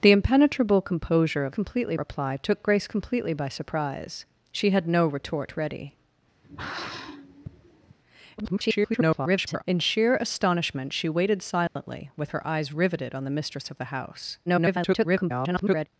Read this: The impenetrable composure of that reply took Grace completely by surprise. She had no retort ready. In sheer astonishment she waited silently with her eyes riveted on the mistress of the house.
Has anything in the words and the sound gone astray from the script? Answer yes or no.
yes